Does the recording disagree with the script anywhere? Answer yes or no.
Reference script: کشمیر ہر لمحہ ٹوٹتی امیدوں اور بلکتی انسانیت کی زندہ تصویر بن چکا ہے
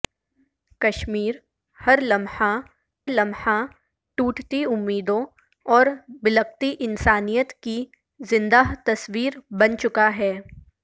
yes